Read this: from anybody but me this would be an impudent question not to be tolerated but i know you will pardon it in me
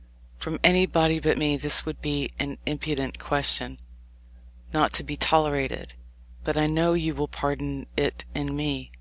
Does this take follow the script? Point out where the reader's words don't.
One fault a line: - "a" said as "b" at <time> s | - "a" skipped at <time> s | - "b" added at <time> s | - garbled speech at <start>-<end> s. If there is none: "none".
none